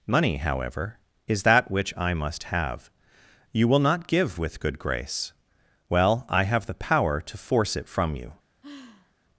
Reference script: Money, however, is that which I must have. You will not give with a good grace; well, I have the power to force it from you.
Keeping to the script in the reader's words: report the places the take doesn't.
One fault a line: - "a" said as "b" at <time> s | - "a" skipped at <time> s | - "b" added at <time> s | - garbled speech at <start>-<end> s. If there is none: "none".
- "a" skipped at 4.6 s